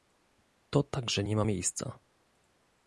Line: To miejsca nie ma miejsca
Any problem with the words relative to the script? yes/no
yes